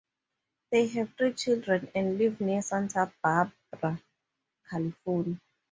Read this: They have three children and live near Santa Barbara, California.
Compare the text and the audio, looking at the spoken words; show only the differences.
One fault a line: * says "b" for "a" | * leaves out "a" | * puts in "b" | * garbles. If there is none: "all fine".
all fine